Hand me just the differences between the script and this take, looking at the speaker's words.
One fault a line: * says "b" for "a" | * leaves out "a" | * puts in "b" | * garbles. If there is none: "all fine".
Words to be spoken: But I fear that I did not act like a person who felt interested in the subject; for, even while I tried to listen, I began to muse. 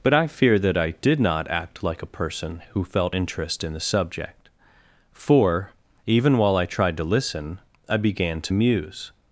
* says "interest" for "interested"